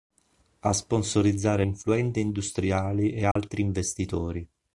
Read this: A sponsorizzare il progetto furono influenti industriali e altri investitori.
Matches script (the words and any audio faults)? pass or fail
fail